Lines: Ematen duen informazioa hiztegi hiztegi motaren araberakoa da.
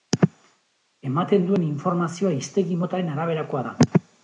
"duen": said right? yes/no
yes